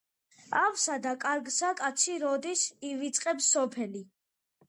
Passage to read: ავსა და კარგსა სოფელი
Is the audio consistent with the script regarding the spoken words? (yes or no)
no